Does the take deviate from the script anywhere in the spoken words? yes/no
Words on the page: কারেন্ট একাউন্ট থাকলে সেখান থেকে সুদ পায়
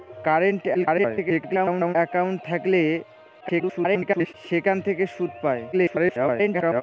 yes